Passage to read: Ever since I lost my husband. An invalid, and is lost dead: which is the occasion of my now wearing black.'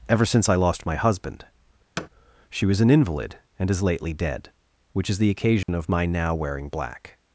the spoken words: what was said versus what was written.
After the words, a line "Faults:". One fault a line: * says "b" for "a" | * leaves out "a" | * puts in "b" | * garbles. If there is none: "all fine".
Ever since I lost my husband. She was an invalid, and is lately dead: which is the occasion of my now wearing black.'
Faults:
* puts in "She was"
* says "lately" for "lost"